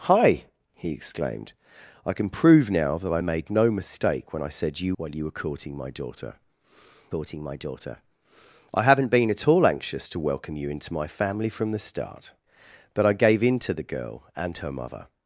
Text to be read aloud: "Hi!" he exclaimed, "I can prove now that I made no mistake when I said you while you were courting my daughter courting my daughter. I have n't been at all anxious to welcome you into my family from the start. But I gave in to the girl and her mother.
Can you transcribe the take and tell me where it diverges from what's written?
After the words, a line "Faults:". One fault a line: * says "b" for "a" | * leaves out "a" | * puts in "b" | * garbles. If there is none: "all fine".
"Hi!" he exclaimed, "I can prove now that I made no mistake when I said you while you were courting my daughter courting my daughter. I have n't been at all anxious to welcome you into my family from the start. But I gave in to the girl and her mother.
Faults:
all fine